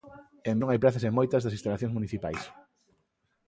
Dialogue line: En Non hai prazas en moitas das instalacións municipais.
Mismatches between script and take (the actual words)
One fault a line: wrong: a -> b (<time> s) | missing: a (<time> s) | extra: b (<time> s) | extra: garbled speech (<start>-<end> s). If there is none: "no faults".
no faults